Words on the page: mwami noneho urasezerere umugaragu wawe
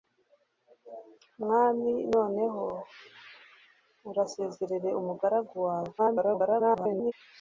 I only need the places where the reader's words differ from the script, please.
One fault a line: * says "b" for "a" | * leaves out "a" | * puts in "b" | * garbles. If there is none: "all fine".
* garbles